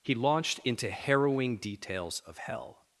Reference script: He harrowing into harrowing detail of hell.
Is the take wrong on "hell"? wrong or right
right